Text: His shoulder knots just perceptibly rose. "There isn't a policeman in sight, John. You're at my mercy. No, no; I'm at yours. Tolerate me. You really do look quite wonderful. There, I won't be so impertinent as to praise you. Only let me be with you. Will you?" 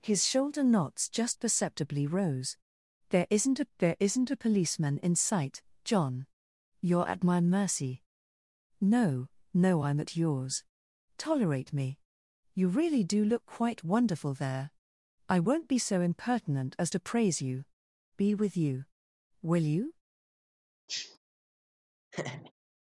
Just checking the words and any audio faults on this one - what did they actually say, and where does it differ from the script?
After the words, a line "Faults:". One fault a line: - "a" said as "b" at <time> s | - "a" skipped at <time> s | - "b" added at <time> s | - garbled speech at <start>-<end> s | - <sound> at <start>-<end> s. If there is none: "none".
His shoulder knots just perceptibly rose. "There isn't a there isn't a policeman in sight, John. You're at my mercy. No, no; I'm at yours. Tolerate me. You really do look quite wonderful. There, I won't be so impertinent as to praise you. Be with you. Will you?"
Faults:
- "there isn't a" added at 3.8 s
- "Only let me" skipped at 17.7 s
- sniff at 20.9-21.2 s
- laugh at 22.1-22.5 s